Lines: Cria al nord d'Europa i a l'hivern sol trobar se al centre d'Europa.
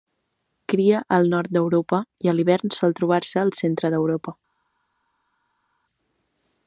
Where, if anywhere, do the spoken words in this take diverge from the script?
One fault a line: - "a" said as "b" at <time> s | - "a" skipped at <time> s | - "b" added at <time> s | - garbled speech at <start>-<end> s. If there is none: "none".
none